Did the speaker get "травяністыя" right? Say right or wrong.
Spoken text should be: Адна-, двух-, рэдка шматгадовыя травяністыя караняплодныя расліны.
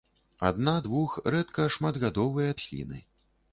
wrong